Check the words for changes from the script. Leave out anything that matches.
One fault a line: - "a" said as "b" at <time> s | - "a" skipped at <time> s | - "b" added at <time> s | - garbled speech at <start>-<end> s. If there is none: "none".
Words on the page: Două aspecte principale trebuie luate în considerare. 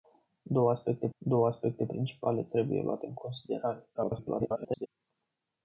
- "două aspecte" added at 1.2 s
- garbled speech at 3.9-4.9 s